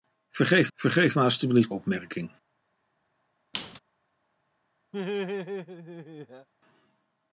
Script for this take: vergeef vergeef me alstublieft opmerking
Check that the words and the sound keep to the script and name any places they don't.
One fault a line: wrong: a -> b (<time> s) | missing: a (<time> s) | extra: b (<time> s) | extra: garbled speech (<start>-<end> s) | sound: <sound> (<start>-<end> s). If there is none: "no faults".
sound: squeak (3.5-3.8 s)
sound: laugh (4.9-6.5 s)